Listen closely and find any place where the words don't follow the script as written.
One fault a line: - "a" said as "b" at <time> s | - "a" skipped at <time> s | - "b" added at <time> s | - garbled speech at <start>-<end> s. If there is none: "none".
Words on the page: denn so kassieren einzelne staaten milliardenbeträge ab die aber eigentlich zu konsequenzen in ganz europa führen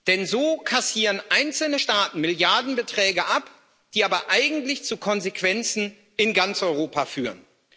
none